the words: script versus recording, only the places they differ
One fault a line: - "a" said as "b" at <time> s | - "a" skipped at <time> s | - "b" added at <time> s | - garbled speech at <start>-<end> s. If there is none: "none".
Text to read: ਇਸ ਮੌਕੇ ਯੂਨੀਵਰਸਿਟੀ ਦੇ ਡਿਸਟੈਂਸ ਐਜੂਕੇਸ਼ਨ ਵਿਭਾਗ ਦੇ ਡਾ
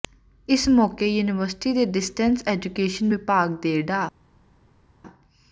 none